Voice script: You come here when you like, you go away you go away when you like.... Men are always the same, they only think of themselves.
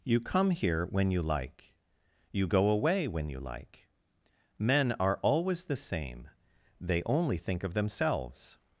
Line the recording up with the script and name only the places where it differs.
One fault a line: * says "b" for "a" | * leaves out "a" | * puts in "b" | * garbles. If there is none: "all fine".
* leaves out "you go away"